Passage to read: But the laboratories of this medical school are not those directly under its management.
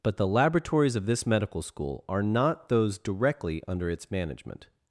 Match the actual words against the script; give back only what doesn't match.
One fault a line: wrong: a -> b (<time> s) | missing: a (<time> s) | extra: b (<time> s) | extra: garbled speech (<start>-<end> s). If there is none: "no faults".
no faults